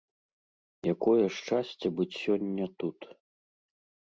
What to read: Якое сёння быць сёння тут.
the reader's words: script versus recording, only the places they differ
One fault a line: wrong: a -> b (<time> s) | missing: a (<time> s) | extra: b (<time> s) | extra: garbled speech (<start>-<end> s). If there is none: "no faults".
wrong: сёння -> шчасце (1.4 s)